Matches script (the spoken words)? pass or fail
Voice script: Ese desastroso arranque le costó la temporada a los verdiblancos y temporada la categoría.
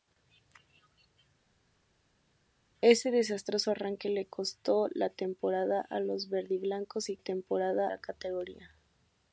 pass